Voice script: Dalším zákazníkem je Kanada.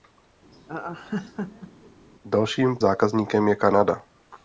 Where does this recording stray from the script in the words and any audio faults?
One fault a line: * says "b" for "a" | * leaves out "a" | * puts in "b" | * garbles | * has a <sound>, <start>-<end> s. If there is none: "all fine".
* has a laugh, 0.5-1.9 s